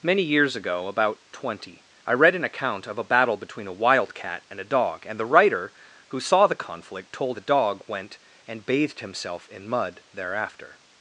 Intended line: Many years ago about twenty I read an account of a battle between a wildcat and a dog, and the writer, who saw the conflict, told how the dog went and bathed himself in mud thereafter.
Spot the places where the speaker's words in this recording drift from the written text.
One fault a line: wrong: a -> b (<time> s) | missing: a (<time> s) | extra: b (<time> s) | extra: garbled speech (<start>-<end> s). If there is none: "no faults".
missing: how (7.4 s)